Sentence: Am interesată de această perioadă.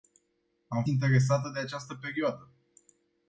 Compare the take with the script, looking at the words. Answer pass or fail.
pass